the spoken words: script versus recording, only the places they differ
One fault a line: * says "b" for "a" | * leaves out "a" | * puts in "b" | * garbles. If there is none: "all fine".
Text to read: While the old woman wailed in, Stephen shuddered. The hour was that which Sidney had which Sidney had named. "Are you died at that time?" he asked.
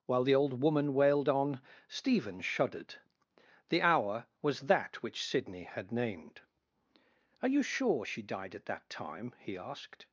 * says "on" for "in"
* leaves out "which Sidney had"
* puts in "sure she"